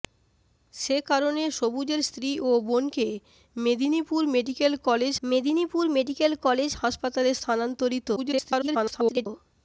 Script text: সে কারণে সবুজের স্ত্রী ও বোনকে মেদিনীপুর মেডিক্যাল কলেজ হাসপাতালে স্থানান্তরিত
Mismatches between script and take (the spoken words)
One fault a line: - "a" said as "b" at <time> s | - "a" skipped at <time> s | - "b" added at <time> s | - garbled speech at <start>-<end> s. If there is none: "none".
- "মেদিনীপুর মেডিক্যাল কলেজ" added at 5.2 s
- garbled speech at 8.2-9.3 s